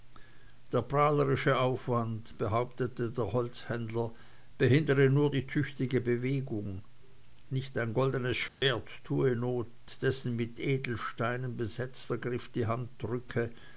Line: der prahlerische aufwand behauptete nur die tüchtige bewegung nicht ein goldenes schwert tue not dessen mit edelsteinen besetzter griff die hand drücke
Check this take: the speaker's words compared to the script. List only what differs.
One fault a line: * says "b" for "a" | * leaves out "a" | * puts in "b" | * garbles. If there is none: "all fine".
* puts in "der holzhändler behindere"